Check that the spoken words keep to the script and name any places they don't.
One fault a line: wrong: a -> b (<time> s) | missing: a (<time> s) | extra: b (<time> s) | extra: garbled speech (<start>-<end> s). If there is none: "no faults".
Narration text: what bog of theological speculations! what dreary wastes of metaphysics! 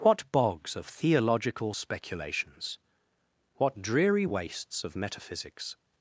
wrong: bog -> bogs (0.3 s)